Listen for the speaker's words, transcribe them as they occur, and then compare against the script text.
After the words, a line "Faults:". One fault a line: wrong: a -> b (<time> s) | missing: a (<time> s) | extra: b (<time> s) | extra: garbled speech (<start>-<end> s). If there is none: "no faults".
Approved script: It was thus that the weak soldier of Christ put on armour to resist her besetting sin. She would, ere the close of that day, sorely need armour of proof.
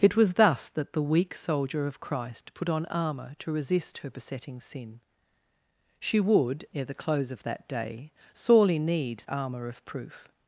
It was thus that the weak soldier of Christ put on armour to resist her besetting sin. She would, ere the close of that day, sorely need armour of proof.
Faults:
no faults